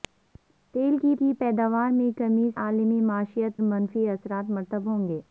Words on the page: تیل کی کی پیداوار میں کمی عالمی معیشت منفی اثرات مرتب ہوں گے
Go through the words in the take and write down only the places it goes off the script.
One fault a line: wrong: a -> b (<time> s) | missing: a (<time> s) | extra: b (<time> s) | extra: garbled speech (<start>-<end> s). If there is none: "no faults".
no faults